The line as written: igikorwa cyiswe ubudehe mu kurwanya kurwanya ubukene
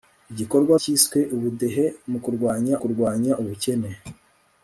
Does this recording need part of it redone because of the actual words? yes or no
no